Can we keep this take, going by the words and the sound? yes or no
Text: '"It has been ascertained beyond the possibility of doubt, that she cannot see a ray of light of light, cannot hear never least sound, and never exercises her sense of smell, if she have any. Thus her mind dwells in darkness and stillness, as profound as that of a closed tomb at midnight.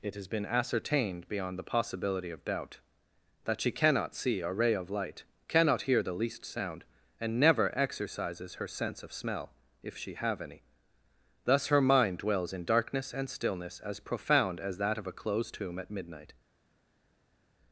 no